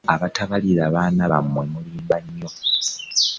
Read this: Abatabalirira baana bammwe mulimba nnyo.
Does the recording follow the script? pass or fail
pass